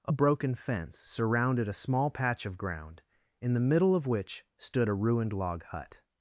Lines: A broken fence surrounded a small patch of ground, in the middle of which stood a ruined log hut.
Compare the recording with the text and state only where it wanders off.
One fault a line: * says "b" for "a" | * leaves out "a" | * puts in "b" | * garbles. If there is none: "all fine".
all fine